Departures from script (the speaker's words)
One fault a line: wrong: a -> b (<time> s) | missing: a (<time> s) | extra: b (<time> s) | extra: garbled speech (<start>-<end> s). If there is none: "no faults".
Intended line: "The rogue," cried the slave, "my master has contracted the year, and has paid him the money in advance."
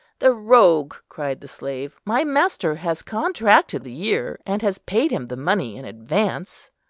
no faults